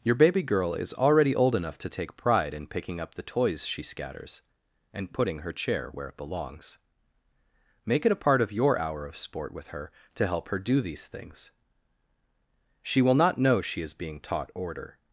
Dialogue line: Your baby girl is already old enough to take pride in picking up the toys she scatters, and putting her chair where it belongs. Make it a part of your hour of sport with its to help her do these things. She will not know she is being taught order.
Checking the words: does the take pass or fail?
fail